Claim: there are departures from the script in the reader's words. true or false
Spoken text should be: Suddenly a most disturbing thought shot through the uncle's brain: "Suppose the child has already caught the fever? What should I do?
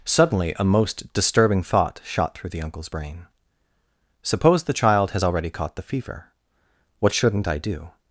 true